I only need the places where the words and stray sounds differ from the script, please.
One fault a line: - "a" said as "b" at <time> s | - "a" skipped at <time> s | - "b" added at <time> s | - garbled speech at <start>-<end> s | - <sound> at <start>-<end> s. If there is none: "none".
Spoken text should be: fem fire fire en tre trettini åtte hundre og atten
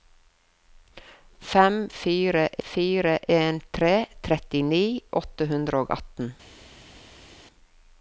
none